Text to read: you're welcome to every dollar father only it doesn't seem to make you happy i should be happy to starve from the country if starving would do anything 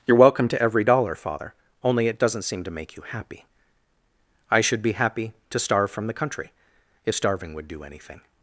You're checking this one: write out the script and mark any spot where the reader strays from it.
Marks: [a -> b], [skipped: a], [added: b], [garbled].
you're welcome to every dollar father only it doesn't seem to make you happy i should be happy to starve from the country if starving would do anything